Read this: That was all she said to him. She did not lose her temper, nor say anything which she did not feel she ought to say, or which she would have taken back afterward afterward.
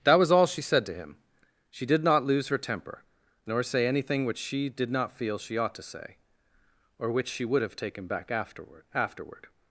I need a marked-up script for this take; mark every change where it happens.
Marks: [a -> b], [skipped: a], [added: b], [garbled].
That was all she said to him. She did not lose her temper, nor say anything which she did not feel she ought to say, or which she would have taken back afterward afterward.